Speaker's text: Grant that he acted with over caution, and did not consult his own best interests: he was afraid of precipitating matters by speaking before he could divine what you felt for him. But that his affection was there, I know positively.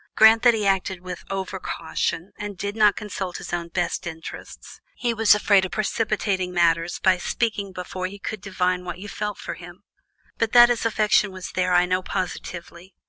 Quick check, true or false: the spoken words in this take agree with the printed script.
true